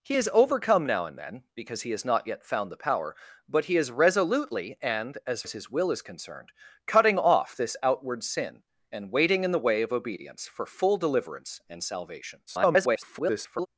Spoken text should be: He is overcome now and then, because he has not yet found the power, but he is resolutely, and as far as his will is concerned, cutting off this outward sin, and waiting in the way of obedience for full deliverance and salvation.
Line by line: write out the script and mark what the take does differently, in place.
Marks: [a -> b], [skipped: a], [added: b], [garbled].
He is overcome now and then, because he has not yet found the power, but he is resolutely, and as [skipped: far] as his will is concerned, cutting off this outward sin, and waiting in the way of obedience for full deliverance and salvation. [garbled]